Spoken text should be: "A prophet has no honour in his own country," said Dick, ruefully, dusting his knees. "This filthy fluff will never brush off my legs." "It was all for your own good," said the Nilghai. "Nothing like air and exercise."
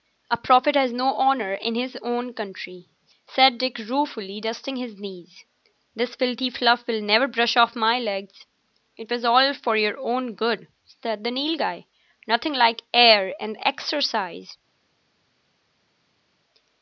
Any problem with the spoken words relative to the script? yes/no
no